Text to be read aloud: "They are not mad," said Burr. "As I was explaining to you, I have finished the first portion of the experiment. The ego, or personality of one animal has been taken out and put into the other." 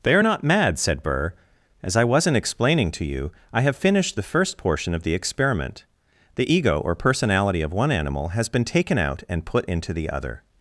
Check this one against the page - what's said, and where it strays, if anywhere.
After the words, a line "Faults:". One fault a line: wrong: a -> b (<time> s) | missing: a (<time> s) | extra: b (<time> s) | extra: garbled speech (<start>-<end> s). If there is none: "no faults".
"They are not mad," said Burr. "As I wasn't explaining to you, I have finished the first portion of the experiment. The ego, or personality of one animal has been taken out and put into the other."
Faults:
wrong: was -> wasn't (2.0 s)